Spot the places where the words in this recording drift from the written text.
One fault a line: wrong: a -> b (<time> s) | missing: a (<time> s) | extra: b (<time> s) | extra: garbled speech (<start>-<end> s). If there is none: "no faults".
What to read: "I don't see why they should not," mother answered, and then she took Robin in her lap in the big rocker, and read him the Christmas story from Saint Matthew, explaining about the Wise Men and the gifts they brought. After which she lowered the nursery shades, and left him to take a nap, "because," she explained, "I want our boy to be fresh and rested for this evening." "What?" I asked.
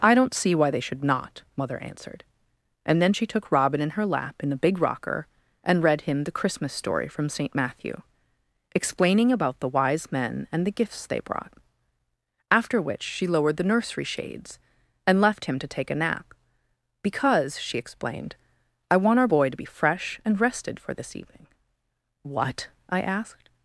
no faults